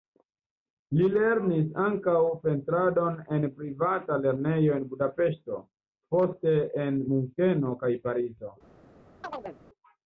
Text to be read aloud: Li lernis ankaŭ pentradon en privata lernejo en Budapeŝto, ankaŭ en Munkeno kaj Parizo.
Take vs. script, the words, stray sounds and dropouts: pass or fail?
fail